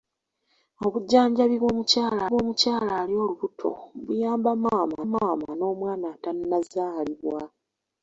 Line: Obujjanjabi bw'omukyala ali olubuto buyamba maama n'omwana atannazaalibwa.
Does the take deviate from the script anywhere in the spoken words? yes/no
yes